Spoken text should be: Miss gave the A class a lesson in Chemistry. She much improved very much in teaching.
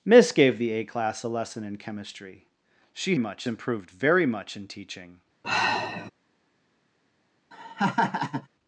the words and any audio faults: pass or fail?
fail